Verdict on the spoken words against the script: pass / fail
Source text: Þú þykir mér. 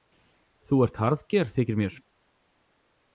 fail